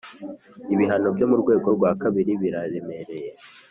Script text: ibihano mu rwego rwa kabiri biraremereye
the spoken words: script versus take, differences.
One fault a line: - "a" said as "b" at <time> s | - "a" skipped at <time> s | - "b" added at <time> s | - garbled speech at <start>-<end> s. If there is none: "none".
- "byo" added at 1.1 s